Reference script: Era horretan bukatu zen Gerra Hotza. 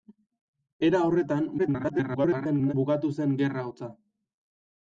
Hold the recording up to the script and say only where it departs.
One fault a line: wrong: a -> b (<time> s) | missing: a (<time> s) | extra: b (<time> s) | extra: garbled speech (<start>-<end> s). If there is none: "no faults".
extra: garbled speech (1.6-2.7 s)